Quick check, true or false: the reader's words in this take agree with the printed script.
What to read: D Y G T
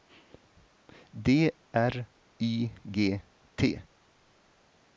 false